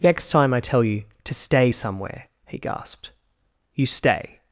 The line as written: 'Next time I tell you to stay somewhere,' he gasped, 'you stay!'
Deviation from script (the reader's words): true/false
false